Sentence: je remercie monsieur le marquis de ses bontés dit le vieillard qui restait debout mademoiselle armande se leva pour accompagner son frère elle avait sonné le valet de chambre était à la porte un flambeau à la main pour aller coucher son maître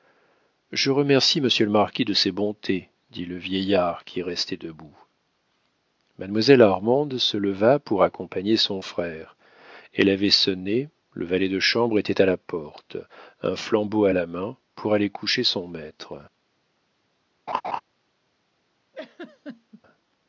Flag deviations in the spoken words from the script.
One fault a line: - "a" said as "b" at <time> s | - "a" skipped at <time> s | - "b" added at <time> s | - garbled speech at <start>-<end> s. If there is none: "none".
none